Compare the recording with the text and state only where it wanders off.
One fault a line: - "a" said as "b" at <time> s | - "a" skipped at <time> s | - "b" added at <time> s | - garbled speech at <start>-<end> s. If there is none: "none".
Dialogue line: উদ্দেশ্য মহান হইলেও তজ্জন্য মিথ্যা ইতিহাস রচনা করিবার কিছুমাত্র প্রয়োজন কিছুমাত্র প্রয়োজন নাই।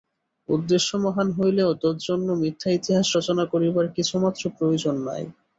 - "কিছুমাত্র প্রয়োজন" skipped at 5.0 s